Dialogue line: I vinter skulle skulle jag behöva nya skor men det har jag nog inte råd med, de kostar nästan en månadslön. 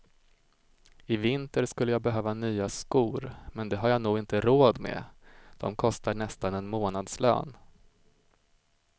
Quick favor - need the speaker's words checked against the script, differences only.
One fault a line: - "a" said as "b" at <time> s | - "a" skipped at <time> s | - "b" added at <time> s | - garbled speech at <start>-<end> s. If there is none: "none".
- "skulle" skipped at 1.9 s